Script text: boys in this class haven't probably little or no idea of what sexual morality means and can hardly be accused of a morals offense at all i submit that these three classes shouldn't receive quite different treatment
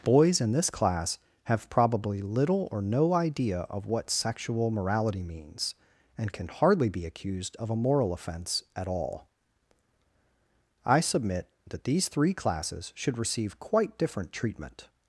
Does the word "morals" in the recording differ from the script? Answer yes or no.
yes